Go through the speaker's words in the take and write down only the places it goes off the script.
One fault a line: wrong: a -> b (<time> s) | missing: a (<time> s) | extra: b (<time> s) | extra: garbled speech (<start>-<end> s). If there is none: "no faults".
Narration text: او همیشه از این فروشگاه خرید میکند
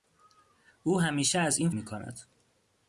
missing: فروشگاه خرید (1.7 s)